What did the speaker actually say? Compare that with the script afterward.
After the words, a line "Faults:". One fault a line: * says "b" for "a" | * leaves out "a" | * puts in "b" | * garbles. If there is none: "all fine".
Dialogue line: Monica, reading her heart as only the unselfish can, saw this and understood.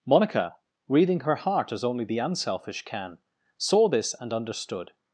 Monica, reading her heart as only the unselfish can, saw this and understood.
Faults:
all fine